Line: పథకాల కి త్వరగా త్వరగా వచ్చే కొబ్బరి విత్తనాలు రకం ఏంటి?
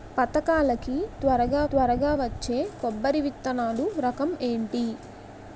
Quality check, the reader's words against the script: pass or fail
pass